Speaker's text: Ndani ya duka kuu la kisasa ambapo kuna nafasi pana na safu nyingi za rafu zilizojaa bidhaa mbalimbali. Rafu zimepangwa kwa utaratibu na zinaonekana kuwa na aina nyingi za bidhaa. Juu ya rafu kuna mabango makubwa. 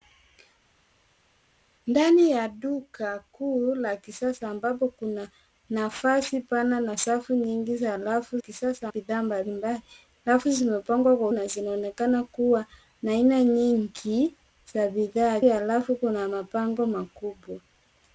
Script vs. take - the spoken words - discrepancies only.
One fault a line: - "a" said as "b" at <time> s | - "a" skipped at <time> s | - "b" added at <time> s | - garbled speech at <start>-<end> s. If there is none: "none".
- "zilizojaa" said as "kisasa" at 8.4 s
- "utaratibu" skipped at 11.3 s
- "Juu" skipped at 15.4 s